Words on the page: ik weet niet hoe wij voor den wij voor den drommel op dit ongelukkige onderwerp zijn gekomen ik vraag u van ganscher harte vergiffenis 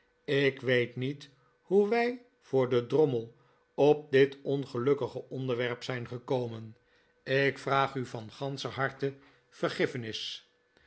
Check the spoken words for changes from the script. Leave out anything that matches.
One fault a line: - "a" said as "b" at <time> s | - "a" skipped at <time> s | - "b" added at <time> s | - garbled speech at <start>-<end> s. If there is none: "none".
- "wij voor den" skipped at 2.9 s